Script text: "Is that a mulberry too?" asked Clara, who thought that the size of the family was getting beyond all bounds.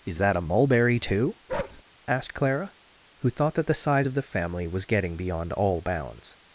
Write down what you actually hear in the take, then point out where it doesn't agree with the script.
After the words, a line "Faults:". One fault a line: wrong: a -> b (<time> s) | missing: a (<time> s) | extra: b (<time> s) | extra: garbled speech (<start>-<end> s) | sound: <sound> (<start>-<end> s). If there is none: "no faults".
"Is that a mulberry too?" asked Clara, who thought that the size of the family was getting beyond all bounds.
Faults:
sound: bark (1.5-1.8 s)